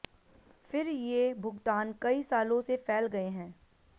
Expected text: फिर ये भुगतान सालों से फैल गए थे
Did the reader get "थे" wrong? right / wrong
wrong